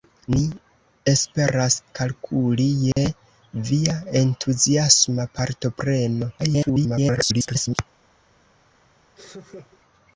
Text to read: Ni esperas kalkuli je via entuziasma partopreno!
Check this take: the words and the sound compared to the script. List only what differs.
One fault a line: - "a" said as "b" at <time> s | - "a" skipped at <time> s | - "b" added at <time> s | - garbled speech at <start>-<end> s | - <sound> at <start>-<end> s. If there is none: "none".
- dropout at 2.9-3.0 s
- garbled speech at 6.4-7.8 s
- laugh at 9.2-9.8 s